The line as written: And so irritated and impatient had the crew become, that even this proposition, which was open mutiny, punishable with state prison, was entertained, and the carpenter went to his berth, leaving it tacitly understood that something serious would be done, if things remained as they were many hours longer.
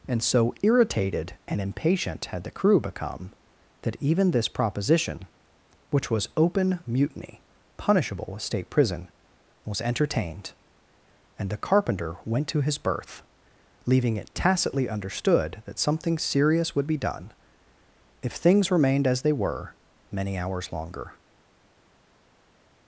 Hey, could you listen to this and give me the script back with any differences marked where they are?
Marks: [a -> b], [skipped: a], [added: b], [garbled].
And so irritated and impatient had the crew become, that even this proposition, which was open mutiny, punishable with state prison, was entertained, and the carpenter went to his berth, leaving it tacitly understood that something serious would be done, if things remained as they were many hours longer.